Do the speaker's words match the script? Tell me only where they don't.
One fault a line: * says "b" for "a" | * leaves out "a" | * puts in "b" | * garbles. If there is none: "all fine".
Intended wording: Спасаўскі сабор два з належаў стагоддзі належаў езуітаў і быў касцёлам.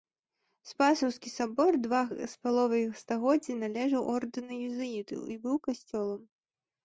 * says "паловай" for "належаў"
* puts in "ордэну"